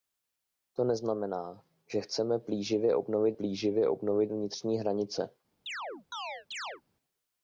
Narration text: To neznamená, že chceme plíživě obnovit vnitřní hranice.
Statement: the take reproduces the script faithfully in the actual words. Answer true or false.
false